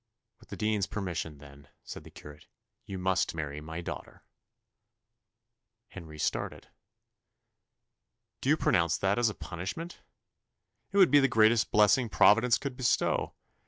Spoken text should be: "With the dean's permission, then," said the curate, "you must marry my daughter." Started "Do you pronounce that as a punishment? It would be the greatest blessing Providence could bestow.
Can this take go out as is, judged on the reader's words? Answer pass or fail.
fail